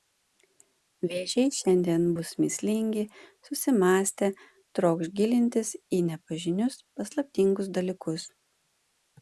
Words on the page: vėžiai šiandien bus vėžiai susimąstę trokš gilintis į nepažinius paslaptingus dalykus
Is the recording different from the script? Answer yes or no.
yes